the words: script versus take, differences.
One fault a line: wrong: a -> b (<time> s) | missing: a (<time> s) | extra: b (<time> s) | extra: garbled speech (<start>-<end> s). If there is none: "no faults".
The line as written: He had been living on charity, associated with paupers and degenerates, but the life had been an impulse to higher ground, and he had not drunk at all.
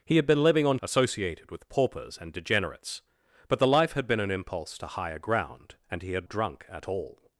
missing: charity (0.8 s)
missing: not (6.3 s)